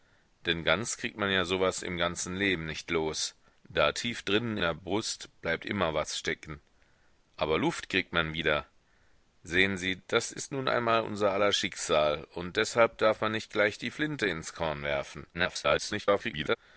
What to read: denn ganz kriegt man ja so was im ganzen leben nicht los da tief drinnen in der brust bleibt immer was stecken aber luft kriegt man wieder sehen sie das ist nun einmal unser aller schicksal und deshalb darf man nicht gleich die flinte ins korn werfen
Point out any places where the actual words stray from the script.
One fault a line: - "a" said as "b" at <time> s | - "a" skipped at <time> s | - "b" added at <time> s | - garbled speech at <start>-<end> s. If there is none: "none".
- "in" skipped at 4.6 s
- garbled speech at 15.3-16.6 s